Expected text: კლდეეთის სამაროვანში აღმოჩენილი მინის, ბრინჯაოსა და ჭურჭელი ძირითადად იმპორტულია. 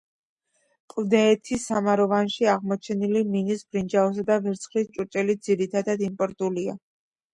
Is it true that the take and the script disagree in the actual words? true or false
true